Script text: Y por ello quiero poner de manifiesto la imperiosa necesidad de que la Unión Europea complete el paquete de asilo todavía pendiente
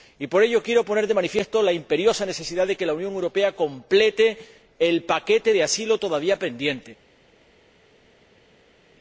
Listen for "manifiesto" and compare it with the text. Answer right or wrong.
right